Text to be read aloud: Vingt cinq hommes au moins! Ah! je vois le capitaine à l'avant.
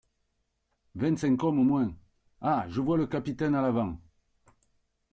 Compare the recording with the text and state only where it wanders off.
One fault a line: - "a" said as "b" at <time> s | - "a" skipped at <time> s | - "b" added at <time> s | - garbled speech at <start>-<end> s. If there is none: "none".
none